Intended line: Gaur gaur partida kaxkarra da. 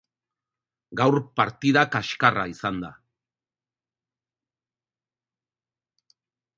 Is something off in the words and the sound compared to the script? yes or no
yes